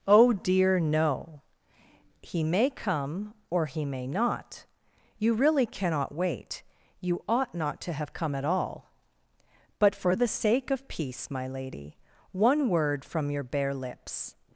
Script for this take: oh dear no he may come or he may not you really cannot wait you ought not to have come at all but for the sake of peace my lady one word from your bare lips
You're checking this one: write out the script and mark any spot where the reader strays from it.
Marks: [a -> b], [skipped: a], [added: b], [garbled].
oh dear no he may come or he may not you really cannot wait you ought not to have come at all but for the sake of peace my lady one word from your bare lips